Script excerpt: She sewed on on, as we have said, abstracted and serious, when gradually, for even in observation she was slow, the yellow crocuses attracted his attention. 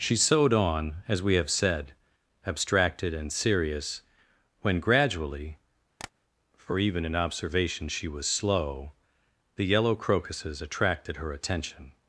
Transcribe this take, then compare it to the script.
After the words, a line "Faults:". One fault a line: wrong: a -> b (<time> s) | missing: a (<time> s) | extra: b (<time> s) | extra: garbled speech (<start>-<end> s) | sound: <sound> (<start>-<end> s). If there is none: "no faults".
She sewed on, as we have said, abstracted and serious, when gradually, for even in observation she was slow, the yellow crocuses attracted her attention.
Faults:
missing: on (0.9 s)
sound: tap (6.0-6.1 s)
wrong: his -> her (11.1 s)